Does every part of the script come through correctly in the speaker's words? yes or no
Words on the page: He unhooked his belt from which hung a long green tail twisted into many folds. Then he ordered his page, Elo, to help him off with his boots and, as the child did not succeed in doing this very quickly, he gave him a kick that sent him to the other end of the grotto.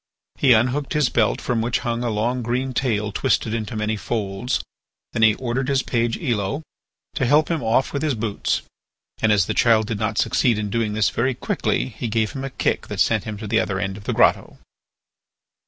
yes